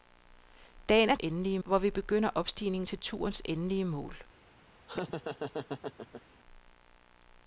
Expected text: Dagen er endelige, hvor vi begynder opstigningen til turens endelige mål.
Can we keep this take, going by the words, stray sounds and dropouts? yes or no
no